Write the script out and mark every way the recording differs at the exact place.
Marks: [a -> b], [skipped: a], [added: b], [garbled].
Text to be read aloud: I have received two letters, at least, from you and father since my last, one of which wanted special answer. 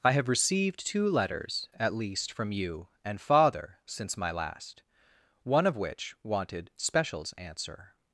I have received two letters, at least, from you and father since my last, one of which wanted [special -> specials] answer.